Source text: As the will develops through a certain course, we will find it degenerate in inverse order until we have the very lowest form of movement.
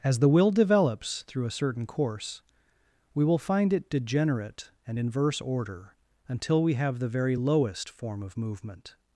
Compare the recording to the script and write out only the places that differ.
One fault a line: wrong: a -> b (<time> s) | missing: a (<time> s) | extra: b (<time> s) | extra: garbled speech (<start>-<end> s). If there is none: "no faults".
wrong: in -> and (4.9 s)